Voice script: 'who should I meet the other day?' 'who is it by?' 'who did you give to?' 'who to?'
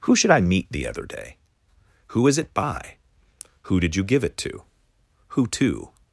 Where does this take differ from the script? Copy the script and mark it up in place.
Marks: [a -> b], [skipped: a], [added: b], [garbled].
'who should I meet the other day?' 'who is it by?' 'who did you give [added: it] to?' 'who to?'